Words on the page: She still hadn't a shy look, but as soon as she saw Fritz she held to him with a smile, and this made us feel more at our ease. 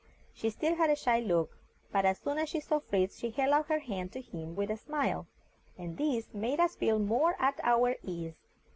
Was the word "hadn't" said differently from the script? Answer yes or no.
yes